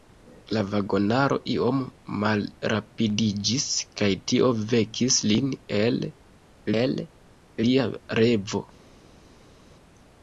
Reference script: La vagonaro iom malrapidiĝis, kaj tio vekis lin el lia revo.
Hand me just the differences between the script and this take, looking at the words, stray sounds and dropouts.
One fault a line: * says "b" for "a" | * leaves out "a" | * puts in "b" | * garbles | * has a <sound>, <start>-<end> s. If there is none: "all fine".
* puts in "el"